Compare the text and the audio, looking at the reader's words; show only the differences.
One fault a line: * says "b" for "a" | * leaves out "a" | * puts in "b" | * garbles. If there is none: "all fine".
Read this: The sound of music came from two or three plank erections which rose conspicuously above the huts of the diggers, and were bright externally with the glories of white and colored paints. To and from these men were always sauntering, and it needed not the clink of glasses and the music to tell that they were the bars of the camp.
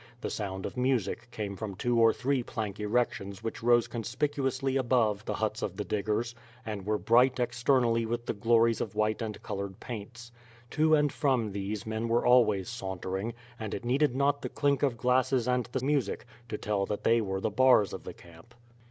all fine